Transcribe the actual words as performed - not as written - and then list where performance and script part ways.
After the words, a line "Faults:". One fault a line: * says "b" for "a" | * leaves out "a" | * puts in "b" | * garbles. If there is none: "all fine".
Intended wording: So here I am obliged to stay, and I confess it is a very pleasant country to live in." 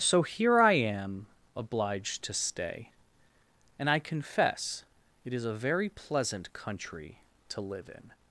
So here I am obliged to stay, and I confess it is a very pleasant country to live in."
Faults:
all fine